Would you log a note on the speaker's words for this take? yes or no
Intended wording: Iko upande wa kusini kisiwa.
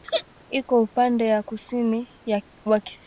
yes